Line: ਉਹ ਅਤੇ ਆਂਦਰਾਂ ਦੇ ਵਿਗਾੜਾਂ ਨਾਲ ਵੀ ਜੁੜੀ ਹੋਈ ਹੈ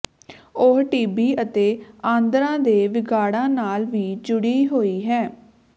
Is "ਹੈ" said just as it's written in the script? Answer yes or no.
yes